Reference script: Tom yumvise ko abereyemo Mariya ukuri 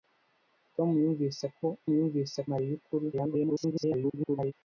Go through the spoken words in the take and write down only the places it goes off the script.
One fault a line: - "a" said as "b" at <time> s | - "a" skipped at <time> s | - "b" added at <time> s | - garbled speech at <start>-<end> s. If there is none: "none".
- "abereyemo" said as "yumvise" at 2.0 s
- garbled speech at 3.1-4.5 s